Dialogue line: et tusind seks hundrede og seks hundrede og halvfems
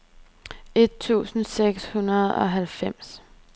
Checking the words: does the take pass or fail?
fail